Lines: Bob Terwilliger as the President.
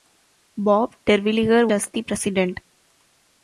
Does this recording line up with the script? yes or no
yes